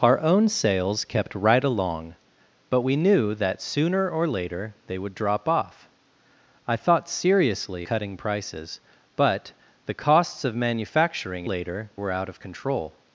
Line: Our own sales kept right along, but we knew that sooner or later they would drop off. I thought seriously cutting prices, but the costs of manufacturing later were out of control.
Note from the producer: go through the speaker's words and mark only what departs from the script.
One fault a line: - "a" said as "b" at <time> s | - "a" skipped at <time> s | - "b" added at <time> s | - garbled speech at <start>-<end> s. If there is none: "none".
none